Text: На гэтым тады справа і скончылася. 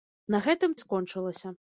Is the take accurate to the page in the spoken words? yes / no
no